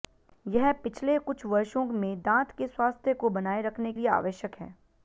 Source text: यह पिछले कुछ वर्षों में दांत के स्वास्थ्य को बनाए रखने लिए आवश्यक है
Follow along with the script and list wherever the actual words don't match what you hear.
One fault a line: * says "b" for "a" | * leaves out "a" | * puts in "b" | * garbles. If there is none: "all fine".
all fine